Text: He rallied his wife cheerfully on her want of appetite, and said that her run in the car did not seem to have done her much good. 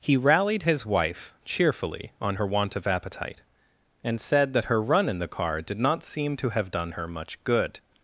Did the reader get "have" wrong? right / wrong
right